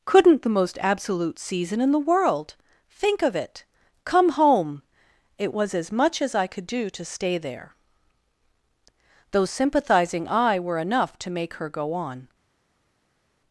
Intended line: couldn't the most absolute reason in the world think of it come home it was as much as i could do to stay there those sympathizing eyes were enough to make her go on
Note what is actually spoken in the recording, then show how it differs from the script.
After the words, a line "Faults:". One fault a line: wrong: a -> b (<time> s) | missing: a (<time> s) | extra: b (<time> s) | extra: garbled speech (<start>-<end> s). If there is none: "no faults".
couldn't the most absolute season in the world think of it come home it was as much as i could do to stay there those sympathizing eye were enough to make her go on
Faults:
wrong: reason -> season (1.4 s)
wrong: eyes -> eye (10.3 s)